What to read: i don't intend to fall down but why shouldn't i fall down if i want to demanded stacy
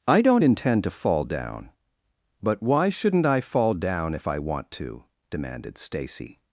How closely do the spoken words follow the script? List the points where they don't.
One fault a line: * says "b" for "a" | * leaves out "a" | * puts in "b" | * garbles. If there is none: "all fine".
all fine